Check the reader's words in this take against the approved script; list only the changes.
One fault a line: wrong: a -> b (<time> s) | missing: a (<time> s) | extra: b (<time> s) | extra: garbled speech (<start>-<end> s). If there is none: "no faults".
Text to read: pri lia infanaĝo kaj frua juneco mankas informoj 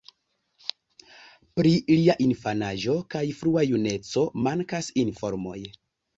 no faults